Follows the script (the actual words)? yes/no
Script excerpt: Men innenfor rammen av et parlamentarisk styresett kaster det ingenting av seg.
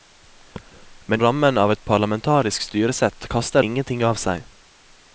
no